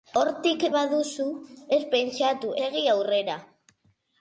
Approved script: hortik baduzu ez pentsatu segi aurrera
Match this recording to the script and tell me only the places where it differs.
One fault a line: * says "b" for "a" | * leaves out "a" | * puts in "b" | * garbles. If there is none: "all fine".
all fine